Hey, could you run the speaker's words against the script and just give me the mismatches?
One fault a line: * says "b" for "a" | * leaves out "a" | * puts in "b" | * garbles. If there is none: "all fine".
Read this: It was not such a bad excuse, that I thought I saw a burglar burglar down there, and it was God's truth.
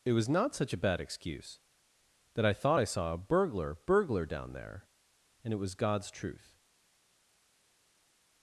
all fine